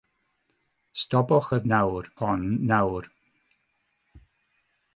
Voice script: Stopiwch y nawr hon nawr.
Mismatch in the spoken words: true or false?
false